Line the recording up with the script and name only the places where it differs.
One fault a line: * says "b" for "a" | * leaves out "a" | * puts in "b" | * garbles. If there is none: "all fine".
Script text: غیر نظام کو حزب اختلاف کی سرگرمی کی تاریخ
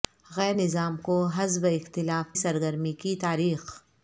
* leaves out "کی"